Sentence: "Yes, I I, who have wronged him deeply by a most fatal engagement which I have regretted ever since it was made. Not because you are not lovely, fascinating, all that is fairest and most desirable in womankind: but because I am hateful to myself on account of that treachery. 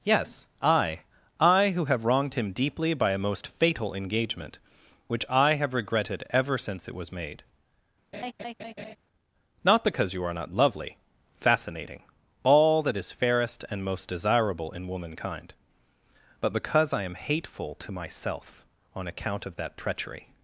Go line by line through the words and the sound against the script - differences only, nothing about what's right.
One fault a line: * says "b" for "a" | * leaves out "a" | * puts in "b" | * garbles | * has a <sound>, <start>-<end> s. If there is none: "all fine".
* has a laugh, 8.1-9.0 s